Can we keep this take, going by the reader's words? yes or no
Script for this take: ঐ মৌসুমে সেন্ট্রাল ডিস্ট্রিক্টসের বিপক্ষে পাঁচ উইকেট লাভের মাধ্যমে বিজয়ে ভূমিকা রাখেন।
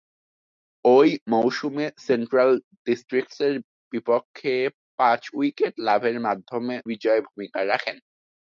yes